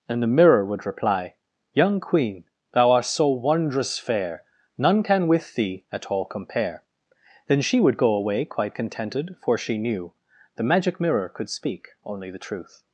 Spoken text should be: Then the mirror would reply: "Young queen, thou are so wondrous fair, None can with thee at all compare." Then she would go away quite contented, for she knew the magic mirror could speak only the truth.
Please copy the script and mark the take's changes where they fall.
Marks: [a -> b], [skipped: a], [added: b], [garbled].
[Then -> And] the mirror would reply: "Young queen, thou [are -> art] so wondrous fair, None can with thee at all compare." Then she would go away quite contented, for she knew the magic mirror could speak only the truth.